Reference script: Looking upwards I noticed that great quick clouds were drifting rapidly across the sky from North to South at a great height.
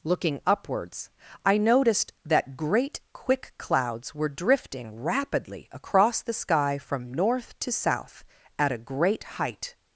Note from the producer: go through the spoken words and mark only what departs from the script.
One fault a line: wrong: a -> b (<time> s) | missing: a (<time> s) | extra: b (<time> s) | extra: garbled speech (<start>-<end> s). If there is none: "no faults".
no faults